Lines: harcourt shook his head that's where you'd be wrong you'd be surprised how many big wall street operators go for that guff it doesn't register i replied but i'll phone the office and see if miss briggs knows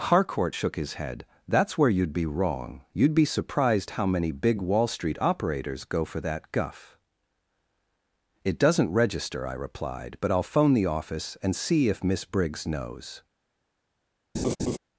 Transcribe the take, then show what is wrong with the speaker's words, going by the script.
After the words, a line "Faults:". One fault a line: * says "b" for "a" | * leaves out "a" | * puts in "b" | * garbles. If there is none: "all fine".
harcourt shook his head that's where you'd be wrong you'd be surprised how many big wall street operators go for that guff it doesn't register i replied but i'll phone the office and see if miss briggs knows
Faults:
all fine